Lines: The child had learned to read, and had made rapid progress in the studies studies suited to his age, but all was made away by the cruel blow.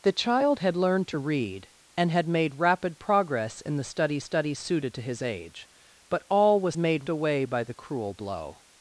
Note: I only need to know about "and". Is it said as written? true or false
true